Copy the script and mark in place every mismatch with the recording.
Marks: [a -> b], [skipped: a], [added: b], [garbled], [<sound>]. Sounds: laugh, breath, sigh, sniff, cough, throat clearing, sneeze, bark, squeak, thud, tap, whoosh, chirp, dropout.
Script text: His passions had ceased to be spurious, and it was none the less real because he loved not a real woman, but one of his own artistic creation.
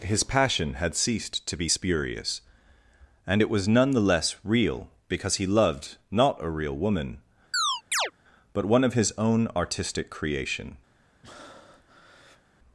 His [passions -> passion] had ceased to be spurious, and it was none the less real because he loved not a real woman, [chirp] but one of his own artistic creation. [breath]